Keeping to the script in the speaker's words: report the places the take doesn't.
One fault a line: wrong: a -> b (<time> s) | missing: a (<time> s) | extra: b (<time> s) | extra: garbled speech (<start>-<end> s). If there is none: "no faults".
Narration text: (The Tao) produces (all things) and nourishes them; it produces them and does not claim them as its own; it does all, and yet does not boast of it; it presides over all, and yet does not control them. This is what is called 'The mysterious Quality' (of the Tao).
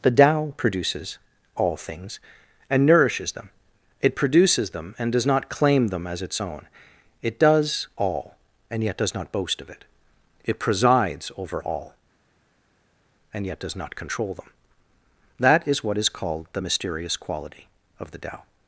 wrong: This -> That (15.4 s)